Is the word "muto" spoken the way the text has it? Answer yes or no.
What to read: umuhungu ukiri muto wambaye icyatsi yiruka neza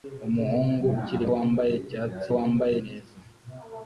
no